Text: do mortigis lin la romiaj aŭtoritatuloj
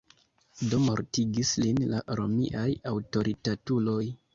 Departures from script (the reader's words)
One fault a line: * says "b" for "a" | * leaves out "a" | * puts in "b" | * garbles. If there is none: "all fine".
all fine